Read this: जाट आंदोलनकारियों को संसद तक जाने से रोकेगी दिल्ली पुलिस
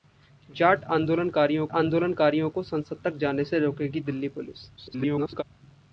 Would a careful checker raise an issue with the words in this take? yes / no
yes